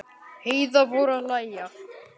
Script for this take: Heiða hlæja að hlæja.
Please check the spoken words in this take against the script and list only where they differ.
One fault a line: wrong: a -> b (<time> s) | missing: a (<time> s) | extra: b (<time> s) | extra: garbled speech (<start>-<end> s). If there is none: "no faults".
wrong: hlæja -> fór (0.9 s)